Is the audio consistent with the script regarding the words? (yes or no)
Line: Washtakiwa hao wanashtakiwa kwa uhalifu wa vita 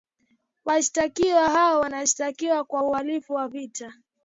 yes